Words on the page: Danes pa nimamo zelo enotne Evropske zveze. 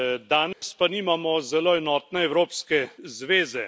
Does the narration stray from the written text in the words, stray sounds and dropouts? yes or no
yes